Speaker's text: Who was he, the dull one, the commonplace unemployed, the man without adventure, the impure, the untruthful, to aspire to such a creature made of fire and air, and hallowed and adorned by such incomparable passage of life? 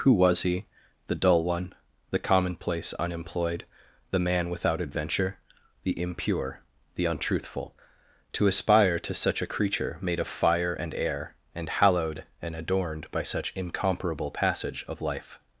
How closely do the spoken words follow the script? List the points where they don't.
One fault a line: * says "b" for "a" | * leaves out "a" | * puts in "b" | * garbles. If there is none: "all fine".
all fine